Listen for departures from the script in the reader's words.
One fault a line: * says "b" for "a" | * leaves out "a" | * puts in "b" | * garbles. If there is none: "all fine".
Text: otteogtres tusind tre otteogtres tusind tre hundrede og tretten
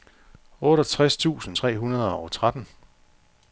* leaves out "otteogtres tusind tre"